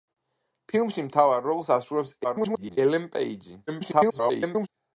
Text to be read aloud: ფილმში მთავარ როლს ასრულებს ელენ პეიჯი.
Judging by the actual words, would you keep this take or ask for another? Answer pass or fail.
fail